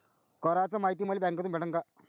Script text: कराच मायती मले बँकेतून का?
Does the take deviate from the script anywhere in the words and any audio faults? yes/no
yes